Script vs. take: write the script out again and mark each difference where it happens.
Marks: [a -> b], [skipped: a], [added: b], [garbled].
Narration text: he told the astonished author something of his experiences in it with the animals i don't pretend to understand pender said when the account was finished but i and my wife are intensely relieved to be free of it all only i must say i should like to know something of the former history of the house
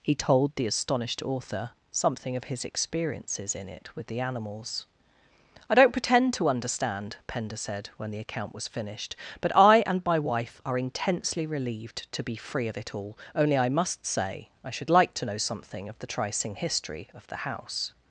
he told the astonished author something of his experiences in it with the animals i don't pretend to understand pender said when the account was finished but i and my wife are intensely relieved to be free of it all only i must say i should like to know something of the [former -> tricing] history of the house